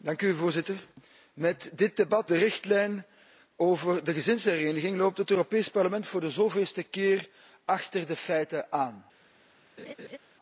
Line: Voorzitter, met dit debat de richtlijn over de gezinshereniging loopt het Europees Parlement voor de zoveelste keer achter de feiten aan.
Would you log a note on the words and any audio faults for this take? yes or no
yes